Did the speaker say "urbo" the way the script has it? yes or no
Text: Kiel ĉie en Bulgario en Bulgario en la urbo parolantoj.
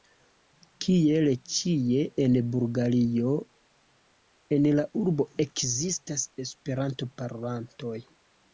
no